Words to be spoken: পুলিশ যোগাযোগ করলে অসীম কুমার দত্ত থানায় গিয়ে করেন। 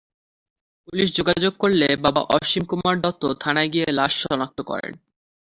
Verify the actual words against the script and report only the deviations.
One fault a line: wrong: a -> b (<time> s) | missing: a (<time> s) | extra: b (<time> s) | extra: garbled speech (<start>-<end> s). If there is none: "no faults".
extra: বাবা (1.9 s)
extra: লাশ শনাক্ত (3.9 s)